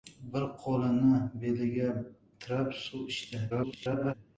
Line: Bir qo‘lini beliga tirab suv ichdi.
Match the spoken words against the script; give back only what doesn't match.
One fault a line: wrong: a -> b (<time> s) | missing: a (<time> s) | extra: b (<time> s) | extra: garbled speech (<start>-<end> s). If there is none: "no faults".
extra: garbled speech (3.5-4.1 s)